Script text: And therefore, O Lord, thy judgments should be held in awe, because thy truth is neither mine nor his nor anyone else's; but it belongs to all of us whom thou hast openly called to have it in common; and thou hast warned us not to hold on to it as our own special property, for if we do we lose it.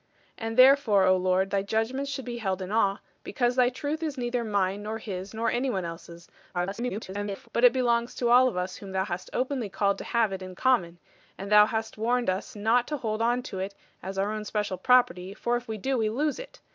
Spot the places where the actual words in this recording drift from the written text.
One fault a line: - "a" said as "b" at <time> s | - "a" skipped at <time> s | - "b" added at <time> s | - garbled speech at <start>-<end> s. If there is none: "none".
- garbled speech at 6.5-7.5 s